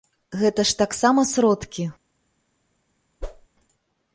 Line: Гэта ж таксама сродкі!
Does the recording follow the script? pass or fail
pass